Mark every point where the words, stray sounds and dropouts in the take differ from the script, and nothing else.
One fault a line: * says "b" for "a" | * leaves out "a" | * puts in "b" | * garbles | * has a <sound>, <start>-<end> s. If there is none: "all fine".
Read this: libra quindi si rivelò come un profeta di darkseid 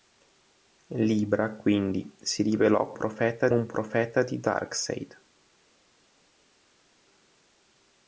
* says "profeta" for "come"